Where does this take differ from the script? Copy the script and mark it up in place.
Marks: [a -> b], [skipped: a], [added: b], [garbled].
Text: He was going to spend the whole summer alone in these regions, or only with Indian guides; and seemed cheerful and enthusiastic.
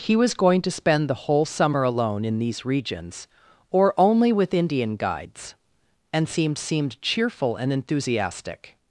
He was going to spend the whole summer alone in these regions, or only with Indian guides; and seemed [added: seemed] cheerful and enthusiastic.